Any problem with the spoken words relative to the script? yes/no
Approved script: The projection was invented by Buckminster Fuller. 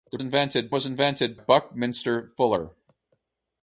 yes